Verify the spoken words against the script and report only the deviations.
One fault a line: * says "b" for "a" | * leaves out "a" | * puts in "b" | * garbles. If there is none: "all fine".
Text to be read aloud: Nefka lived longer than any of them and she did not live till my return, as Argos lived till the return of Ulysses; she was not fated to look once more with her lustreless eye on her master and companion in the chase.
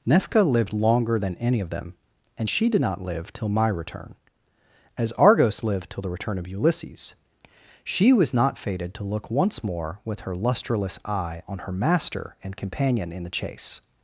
all fine